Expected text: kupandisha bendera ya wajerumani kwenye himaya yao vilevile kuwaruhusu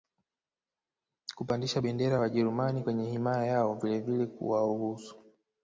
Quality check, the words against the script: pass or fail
pass